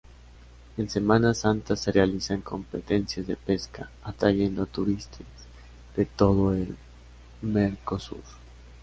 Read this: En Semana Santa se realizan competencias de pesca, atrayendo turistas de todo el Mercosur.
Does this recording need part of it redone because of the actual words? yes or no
no